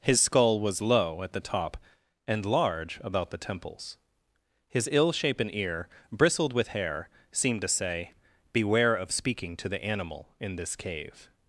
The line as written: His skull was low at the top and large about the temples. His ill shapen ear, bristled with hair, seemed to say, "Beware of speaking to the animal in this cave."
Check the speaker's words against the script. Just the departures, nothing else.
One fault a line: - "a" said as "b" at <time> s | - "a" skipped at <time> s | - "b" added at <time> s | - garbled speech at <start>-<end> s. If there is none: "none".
none